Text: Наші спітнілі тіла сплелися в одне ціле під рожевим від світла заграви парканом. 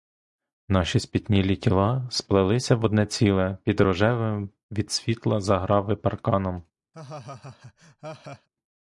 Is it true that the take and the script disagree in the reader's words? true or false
false